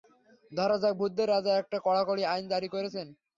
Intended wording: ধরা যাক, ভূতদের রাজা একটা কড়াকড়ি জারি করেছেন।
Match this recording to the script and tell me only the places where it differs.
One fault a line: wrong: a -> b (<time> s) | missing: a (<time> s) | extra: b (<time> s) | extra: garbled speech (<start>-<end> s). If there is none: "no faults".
extra: আইন (2.2 s)